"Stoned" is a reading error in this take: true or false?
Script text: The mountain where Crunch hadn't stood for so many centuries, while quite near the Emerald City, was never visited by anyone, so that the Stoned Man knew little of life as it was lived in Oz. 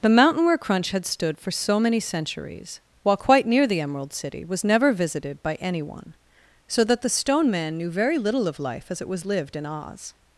true